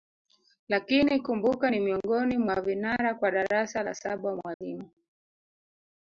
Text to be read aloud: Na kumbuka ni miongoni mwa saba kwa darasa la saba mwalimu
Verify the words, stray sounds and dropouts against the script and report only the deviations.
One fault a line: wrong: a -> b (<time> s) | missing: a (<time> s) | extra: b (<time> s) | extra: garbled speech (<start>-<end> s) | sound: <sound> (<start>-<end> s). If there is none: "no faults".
wrong: Na -> Lakini (0.7 s)
wrong: saba -> vinara (2.6 s)
sound: dropout (4.5-4.6 s)